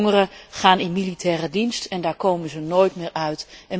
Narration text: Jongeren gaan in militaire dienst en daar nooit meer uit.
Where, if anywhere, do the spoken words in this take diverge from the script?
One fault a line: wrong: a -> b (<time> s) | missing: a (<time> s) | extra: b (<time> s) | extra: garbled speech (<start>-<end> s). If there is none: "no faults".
extra: komen ze (2.1 s)